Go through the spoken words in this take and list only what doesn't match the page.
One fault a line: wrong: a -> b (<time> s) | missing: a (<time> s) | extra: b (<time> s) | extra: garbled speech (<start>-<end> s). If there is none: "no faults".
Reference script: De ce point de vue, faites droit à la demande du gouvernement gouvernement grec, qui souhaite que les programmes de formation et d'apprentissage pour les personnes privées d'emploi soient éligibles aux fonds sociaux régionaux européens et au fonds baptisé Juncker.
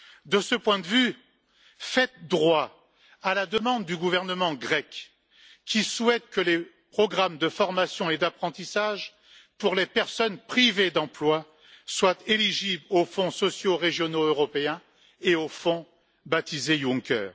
missing: gouvernement (4.5 s)